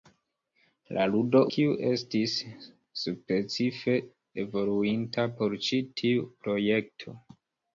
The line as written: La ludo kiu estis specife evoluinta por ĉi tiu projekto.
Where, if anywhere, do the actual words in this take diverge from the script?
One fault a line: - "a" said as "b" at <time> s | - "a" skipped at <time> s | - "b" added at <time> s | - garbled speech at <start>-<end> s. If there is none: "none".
none